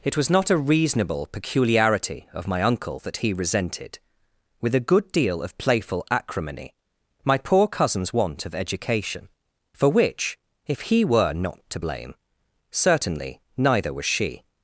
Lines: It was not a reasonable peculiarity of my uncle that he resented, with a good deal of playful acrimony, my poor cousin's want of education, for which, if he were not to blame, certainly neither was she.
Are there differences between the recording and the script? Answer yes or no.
no